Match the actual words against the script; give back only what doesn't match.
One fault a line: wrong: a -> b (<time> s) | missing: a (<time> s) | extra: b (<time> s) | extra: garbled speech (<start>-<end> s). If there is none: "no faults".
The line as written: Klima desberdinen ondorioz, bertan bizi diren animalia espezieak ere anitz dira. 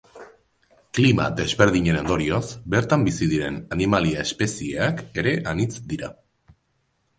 no faults